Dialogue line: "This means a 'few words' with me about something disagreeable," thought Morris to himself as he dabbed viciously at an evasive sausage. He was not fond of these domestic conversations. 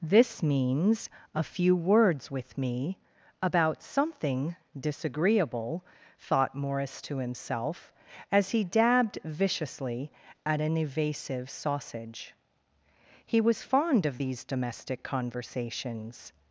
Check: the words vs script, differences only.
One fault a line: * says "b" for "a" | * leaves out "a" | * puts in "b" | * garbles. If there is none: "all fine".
* leaves out "not"